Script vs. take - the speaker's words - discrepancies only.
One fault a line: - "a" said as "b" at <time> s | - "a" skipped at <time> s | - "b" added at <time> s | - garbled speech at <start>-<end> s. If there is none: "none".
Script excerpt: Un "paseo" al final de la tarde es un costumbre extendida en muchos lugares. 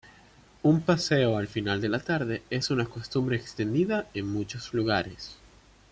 - "un" said as "una" at 2.7 s